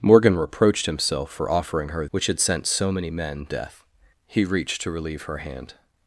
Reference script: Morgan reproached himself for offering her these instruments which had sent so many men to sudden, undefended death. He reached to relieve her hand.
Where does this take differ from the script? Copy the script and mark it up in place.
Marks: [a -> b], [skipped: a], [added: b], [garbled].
Morgan reproached himself for offering her [skipped: these instruments] which had sent so many men [skipped: to sudden, undefended] death. He reached to relieve her hand.